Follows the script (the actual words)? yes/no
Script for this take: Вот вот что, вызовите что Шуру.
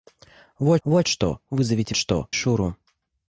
yes